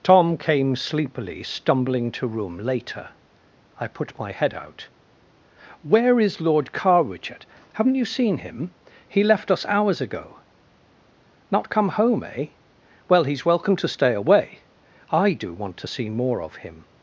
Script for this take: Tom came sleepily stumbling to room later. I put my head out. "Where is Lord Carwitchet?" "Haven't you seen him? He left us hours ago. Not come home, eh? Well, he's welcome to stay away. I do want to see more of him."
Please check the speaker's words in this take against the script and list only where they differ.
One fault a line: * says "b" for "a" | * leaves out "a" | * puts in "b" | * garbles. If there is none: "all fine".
all fine